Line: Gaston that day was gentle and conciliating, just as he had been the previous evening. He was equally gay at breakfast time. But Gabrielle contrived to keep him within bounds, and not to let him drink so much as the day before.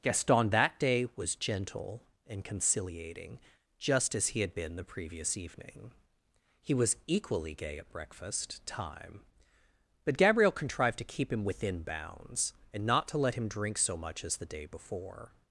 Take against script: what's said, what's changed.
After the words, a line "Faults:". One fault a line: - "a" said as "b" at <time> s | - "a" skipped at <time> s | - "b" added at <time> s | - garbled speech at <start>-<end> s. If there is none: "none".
Gaston that day was gentle and conciliating, just as he had been the previous evening. He was equally gay at breakfast time. But Gabrielle contrived to keep him within bounds, and not to let him drink so much as the day before.
Faults:
none